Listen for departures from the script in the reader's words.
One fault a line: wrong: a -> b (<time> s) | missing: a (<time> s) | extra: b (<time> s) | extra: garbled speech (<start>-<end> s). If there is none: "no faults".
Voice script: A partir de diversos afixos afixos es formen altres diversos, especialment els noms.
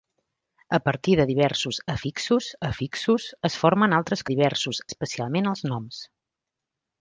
no faults